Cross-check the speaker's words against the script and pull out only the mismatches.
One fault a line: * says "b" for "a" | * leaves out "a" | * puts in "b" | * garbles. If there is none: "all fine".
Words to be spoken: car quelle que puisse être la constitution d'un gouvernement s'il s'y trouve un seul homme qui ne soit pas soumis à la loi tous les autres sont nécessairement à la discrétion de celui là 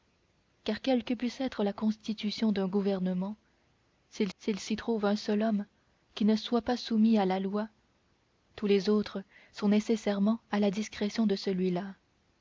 * puts in "s'il"